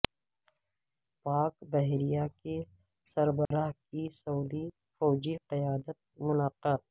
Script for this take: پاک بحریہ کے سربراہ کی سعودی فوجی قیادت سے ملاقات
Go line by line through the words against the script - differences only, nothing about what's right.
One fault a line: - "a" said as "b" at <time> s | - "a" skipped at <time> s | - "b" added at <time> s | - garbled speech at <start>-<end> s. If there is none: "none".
- "سے" skipped at 6.0 s